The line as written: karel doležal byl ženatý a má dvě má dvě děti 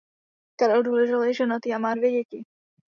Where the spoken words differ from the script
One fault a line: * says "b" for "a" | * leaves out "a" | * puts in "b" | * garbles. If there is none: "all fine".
* says "je" for "byl"
* leaves out "má dvě"